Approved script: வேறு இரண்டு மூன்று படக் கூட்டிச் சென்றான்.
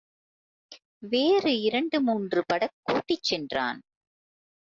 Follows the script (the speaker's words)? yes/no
yes